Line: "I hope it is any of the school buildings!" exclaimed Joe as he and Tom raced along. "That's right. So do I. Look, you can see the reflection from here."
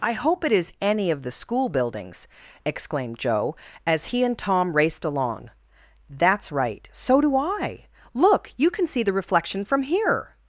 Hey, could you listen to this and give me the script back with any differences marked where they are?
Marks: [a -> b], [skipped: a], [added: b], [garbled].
"I hope it is any of the school buildings!" exclaimed Joe as he and Tom raced along. "That's right. So do I. Look, you can see the reflection from here."